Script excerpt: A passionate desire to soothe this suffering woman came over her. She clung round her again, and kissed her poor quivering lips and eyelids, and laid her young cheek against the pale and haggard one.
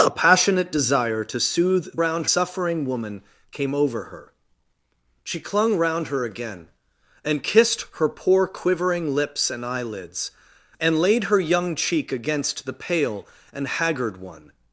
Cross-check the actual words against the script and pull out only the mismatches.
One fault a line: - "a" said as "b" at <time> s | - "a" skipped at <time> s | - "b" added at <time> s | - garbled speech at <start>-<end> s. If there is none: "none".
- "this" said as "round" at 2.0 s